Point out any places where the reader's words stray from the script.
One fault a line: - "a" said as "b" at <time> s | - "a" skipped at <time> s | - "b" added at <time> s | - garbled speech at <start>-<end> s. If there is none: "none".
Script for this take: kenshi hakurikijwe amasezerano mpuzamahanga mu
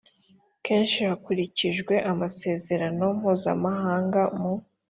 none